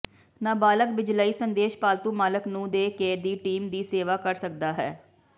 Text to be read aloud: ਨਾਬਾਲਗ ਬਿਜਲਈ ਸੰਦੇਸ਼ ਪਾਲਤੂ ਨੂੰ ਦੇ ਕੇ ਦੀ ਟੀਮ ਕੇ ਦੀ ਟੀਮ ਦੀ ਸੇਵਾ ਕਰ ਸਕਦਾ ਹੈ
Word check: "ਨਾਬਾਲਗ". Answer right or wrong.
right